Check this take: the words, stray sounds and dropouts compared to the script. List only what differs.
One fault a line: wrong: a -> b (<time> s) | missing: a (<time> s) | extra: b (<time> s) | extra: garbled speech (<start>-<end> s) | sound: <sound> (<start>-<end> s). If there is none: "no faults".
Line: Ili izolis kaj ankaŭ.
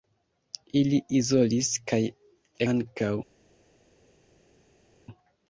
no faults